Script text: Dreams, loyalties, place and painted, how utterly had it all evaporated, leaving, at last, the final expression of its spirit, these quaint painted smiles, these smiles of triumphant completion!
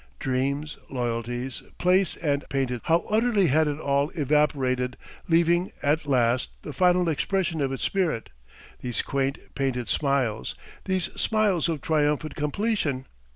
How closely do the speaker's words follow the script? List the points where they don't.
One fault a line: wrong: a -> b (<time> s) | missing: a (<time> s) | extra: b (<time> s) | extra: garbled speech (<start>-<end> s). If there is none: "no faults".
no faults